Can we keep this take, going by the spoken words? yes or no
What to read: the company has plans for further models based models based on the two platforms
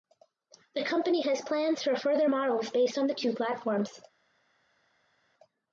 no